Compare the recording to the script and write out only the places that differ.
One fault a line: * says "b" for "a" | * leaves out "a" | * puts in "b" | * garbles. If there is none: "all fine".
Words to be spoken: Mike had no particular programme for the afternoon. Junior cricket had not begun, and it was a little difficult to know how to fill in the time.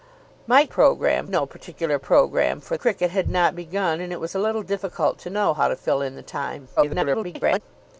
* says "programme" for "had"
* leaves out "the afternoon Junior"
* garbles